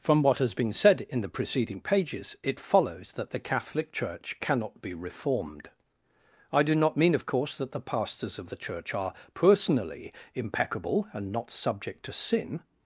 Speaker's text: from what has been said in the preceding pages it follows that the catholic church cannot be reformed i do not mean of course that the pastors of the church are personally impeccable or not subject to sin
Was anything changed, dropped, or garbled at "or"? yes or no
yes